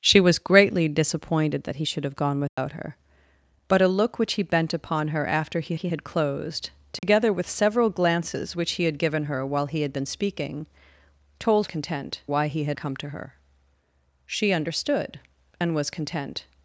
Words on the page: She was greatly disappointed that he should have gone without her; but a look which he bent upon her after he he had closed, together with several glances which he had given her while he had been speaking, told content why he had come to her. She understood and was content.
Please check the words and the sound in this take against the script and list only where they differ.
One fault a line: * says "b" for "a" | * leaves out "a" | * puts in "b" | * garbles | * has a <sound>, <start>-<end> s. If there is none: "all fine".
* has a dropout, 2.5-2.6 s
* has a dropout, 7.0-7.0 s